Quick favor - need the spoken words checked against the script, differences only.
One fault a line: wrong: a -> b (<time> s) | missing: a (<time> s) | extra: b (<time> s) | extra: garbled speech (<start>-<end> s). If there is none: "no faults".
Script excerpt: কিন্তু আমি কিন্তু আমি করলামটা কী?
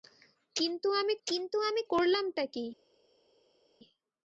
no faults